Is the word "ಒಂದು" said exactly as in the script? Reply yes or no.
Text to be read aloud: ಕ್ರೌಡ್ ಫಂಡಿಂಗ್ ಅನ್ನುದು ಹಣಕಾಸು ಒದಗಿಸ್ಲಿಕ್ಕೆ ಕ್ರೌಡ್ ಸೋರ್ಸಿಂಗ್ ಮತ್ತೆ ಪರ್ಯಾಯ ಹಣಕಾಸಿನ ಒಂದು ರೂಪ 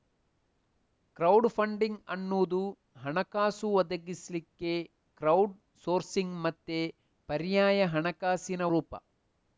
no